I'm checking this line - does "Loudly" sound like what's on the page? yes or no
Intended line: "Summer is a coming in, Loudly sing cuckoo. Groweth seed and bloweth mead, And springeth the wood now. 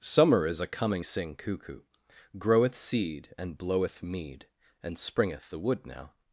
no